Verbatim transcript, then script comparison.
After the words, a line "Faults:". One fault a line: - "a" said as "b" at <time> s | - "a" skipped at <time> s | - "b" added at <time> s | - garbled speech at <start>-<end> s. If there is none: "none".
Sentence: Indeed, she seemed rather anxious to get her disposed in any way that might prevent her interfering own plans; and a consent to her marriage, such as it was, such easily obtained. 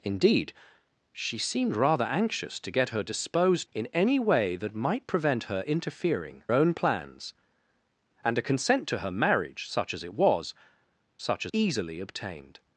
Indeed, she seemed rather anxious to get her disposed in any way that might prevent her interfering own plans; and a consent to her marriage, such as it was, such easily obtained.
Faults:
none